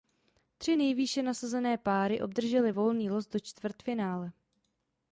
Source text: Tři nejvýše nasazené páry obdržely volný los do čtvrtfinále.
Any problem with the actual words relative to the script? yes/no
no